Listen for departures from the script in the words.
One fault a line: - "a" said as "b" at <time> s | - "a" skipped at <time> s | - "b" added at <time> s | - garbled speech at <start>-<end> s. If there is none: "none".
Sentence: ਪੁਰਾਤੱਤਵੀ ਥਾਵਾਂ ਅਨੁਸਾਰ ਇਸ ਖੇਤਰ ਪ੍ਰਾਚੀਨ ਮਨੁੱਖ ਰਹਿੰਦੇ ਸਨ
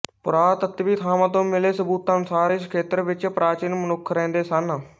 - "ਤੋਂ ਮਿਲੇ ਸਬੂਤਾਂ" added at 1.3 s
- "ਵਿੱਚ" added at 3.0 s